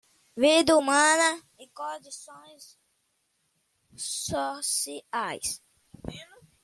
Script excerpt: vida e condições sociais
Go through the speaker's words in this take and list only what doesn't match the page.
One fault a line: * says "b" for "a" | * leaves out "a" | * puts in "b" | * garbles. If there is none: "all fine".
* puts in "humana"